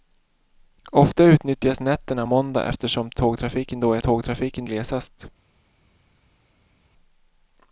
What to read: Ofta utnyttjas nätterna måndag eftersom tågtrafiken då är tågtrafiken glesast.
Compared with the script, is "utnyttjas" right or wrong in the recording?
right